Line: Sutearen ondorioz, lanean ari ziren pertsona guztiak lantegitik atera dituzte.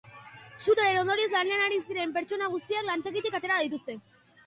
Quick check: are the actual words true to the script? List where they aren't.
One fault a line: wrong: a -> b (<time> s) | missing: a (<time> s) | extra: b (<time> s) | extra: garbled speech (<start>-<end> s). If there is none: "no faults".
no faults